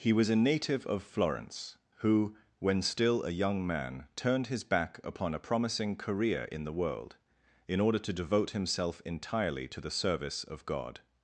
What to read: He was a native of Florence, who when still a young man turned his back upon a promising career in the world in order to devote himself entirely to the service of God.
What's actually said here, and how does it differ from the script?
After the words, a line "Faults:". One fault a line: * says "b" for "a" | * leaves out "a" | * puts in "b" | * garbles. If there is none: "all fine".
He was a native of Florence, who when still a young man turned his back upon a promising career in the world in order to devote himself entirely to the service of God.
Faults:
all fine